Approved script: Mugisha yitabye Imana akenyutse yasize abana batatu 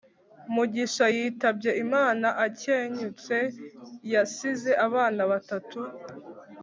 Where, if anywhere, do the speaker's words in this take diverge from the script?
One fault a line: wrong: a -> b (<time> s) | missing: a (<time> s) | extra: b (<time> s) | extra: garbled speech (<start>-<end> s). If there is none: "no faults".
no faults